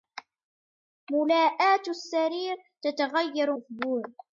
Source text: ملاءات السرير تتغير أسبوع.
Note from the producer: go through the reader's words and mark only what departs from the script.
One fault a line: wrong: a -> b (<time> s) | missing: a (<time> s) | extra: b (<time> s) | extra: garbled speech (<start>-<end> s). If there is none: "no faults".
no faults